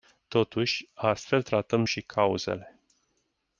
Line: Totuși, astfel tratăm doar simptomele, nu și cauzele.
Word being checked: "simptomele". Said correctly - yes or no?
no